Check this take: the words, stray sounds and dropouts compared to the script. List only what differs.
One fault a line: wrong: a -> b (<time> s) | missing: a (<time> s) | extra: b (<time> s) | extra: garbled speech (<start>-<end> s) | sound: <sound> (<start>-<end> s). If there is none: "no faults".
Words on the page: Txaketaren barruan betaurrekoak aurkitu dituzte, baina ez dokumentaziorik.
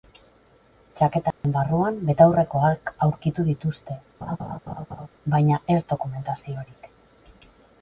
sound: dropout (1.3-1.4 s)
sound: laugh (4.2-5.1 s)